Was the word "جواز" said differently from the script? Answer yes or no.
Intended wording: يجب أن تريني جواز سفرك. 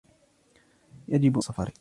yes